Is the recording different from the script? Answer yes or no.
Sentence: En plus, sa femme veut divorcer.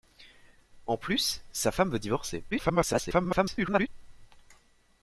yes